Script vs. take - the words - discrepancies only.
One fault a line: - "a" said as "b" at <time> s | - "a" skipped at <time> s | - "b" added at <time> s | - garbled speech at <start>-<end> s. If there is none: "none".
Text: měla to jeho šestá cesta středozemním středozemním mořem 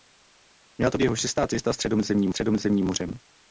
none